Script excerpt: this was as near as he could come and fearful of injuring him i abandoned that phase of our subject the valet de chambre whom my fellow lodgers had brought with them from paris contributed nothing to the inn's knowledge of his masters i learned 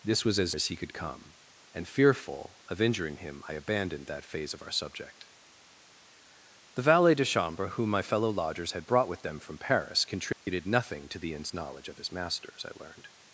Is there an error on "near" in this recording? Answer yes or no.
yes